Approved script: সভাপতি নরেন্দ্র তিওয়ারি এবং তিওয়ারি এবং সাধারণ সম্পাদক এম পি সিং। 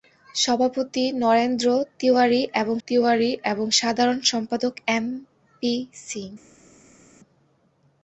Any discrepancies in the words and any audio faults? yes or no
no